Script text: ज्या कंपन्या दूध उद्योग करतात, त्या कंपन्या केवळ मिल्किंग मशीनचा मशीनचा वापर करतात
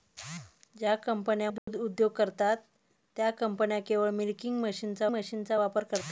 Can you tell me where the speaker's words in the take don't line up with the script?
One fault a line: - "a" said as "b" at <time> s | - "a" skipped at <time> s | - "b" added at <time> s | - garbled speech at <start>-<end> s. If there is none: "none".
none